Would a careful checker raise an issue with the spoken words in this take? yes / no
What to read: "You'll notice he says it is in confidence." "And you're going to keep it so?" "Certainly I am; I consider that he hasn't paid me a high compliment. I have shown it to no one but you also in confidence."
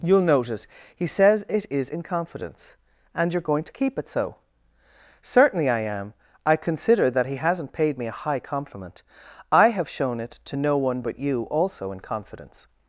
no